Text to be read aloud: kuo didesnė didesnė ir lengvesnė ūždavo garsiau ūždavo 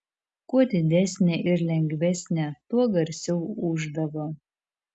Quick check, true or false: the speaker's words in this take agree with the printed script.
false